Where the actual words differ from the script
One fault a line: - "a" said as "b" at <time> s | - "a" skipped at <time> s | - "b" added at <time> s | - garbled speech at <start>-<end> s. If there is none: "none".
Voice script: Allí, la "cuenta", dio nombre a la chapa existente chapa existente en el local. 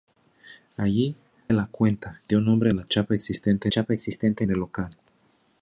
none